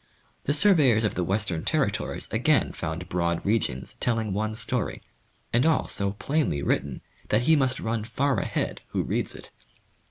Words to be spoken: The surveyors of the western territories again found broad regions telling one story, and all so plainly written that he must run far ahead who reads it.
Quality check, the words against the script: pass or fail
pass